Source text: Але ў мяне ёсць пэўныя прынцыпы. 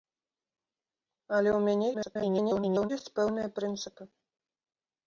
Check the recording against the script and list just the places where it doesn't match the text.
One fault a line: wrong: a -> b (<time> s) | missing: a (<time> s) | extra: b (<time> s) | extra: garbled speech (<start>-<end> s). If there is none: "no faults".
extra: garbled speech (1.9-2.9 s)